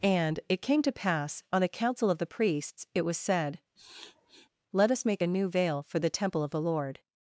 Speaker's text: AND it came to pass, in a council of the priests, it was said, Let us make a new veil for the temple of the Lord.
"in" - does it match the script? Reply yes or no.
no